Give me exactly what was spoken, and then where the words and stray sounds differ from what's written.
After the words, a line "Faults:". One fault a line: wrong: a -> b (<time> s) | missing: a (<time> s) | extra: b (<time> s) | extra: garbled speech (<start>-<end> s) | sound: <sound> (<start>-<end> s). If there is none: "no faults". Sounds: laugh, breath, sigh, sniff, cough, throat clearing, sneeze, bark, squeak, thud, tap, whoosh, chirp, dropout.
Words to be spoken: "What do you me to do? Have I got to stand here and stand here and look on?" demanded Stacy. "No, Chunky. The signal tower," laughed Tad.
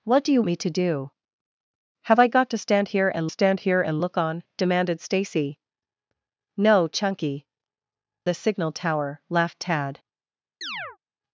"What do you me to do? Have I got to stand here and stand here and look on?" demanded Stacy. "No, Chunky. The signal tower," laughed Tad.
Faults:
sound: chirp (10.6-11.0 s)